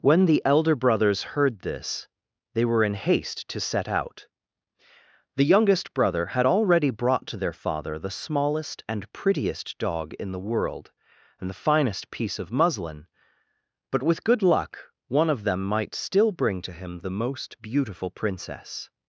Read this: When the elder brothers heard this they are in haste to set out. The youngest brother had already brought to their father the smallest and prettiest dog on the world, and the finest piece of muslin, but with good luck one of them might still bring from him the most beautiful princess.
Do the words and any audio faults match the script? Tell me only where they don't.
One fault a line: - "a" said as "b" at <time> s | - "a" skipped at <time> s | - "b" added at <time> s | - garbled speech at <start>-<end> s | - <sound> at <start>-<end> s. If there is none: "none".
- "are" said as "were" at 2.6 s
- "on" said as "in" at 10.1 s
- "from" said as "to" at 16.6 s